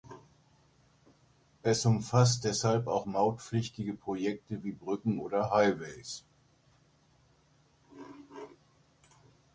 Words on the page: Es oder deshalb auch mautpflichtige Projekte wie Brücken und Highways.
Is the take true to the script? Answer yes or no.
no